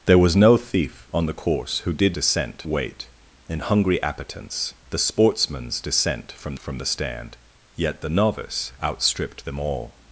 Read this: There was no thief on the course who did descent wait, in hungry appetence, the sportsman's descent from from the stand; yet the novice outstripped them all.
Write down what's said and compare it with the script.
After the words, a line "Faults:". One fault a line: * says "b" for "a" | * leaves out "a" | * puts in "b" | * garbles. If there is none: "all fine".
There was no thief on the course who did descent wait, in hungry appetence, the sportsman's descent from from the stand; yet the novice outstripped them all.
Faults:
all fine